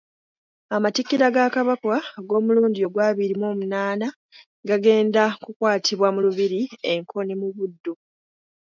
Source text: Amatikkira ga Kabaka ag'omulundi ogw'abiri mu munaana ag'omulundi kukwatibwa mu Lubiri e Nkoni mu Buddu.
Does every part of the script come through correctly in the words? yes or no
no